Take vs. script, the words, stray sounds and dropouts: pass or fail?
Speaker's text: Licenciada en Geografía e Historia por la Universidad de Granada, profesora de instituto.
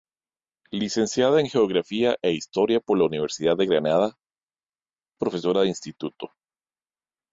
pass